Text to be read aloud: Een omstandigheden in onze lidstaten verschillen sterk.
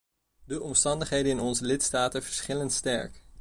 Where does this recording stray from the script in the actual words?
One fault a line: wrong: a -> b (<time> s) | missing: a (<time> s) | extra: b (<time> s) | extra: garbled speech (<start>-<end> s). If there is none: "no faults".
wrong: Een -> De (0.5 s)